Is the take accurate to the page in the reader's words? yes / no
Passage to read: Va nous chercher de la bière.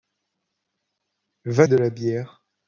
no